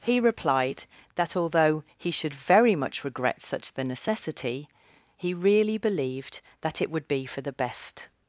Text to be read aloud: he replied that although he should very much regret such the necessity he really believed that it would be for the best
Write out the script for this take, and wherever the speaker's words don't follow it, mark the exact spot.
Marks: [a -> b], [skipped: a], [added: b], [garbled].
he replied that although he should very much regret such the necessity he really believed that it would be for the best